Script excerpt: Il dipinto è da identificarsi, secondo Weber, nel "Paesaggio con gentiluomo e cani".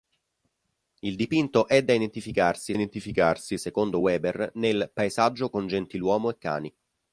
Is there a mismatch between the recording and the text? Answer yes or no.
yes